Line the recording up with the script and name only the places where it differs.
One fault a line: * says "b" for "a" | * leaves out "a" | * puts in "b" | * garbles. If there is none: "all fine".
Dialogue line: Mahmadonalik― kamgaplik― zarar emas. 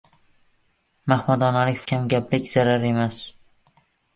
all fine